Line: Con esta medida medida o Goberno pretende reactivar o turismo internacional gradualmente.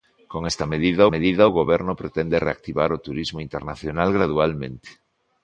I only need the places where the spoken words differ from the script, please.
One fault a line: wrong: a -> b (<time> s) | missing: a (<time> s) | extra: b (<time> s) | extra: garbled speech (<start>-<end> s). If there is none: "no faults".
no faults